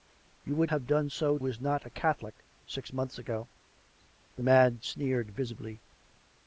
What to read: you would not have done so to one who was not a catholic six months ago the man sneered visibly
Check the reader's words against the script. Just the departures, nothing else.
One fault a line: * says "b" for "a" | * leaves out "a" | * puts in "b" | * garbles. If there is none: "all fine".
* leaves out "not"
* leaves out "to one who"